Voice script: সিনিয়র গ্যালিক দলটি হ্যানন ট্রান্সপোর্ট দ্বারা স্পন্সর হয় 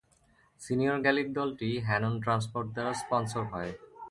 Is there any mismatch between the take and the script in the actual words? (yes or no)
no